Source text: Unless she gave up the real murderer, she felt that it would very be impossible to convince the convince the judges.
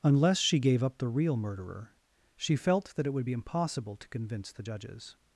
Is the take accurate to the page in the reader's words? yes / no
no